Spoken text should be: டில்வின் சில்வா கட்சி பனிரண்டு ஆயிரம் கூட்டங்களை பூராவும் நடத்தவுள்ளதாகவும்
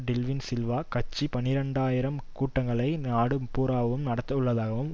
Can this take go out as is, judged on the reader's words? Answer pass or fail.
fail